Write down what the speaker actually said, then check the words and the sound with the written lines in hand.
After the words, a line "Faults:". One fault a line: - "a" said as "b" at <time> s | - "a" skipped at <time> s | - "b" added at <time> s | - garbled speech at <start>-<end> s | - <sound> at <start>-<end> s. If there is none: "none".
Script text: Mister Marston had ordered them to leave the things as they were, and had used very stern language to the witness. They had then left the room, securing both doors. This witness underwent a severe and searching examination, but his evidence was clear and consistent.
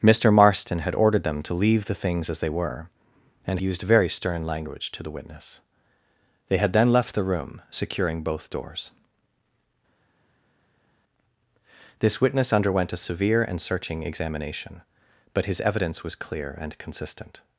Mister Marston had ordered them to leave the things as they were, and used very stern language to the witness. They had then left the room, securing both doors. This witness underwent a severe and searching examination, but his evidence was clear and consistent.
Faults:
- "had" skipped at 3.6 s